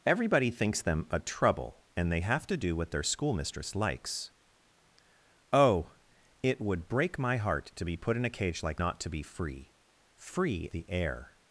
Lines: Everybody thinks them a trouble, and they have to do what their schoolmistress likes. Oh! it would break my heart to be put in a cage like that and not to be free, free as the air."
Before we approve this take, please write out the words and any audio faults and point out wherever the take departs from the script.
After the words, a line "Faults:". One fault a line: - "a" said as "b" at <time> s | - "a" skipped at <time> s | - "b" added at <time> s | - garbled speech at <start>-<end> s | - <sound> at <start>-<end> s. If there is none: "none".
Everybody thinks them a trouble, and they have to do what their schoolmistress likes. Oh! it would break my heart to be put in a cage like not to be free, free the air."
Faults:
- "that and" skipped at 8.8 s
- "as" skipped at 10.7 s